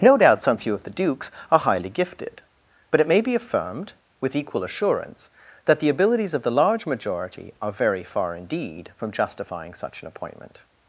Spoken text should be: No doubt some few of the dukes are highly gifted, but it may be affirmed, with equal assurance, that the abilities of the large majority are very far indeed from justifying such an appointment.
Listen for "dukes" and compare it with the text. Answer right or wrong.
right